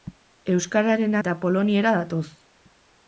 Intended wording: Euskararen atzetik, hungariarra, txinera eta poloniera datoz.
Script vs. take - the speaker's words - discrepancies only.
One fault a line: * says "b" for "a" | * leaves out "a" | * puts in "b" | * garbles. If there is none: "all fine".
* leaves out "atzetik hungariarra txinera"